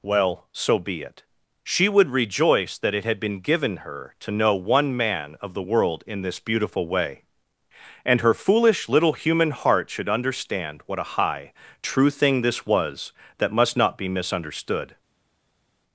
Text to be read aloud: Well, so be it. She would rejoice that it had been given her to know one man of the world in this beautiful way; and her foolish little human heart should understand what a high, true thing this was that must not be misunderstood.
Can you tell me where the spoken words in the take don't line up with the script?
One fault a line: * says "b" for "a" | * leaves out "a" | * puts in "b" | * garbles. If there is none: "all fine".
all fine